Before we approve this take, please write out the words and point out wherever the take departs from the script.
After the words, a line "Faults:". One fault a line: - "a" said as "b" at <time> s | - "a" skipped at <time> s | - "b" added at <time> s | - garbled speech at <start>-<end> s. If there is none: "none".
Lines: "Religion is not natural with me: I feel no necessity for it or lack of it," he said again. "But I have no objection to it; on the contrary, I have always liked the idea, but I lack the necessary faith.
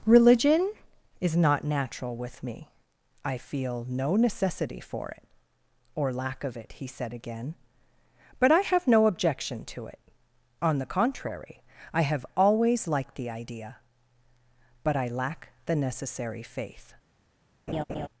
"Religion is not natural with me: I feel no necessity for it or lack of it," he said again. "But I have no objection to it; on the contrary, I have always liked the idea, but I lack the necessary faith.
Faults:
none